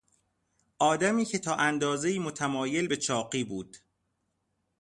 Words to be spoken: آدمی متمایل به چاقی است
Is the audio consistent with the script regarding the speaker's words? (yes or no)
no